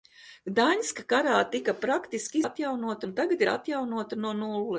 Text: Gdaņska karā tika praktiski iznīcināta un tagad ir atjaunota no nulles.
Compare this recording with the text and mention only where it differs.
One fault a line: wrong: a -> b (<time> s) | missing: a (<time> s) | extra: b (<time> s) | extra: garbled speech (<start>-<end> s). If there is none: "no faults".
wrong: iznīcināta -> atjaunota (2.4 s)